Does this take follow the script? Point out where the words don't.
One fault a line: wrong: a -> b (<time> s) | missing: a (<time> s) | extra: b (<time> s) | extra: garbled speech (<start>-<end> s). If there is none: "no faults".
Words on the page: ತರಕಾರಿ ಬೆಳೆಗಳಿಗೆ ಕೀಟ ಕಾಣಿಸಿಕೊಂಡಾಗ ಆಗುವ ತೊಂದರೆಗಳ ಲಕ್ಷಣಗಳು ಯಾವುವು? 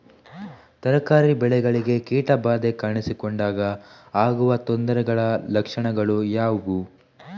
extra: ಬಾಧೆ (2.4 s)